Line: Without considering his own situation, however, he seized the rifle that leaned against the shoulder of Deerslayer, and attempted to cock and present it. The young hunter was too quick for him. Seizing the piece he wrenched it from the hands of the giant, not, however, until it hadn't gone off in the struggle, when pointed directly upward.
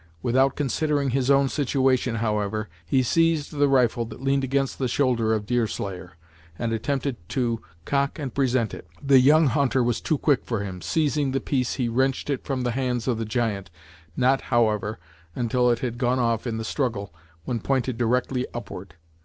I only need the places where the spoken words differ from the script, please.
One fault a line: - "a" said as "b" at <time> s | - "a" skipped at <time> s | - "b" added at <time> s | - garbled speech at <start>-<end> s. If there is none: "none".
- "hadn't" said as "had" at 15.8 s